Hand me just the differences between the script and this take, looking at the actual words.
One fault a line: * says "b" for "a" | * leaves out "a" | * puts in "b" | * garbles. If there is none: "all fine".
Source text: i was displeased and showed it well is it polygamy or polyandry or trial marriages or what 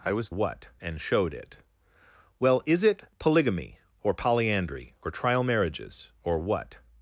* says "what" for "displeased"